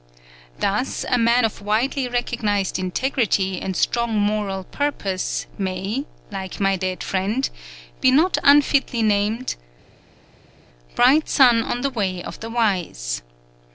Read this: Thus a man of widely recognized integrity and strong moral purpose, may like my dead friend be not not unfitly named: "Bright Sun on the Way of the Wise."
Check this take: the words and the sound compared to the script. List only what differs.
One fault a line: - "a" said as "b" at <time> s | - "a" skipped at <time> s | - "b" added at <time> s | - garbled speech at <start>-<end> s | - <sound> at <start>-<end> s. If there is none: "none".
- "not" skipped at 8.4 s